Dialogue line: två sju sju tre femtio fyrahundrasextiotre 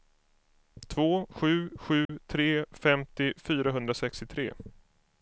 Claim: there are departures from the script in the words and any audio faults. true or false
true